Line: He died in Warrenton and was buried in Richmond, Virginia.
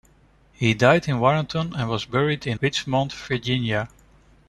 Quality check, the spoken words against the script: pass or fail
pass